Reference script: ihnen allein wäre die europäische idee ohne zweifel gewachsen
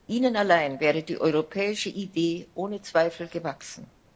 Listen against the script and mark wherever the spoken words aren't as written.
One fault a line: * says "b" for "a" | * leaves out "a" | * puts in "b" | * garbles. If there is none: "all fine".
all fine